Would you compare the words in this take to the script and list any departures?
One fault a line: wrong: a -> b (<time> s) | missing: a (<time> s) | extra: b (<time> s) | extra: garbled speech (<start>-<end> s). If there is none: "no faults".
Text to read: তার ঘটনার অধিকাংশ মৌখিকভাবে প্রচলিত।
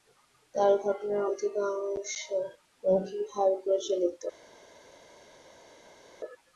no faults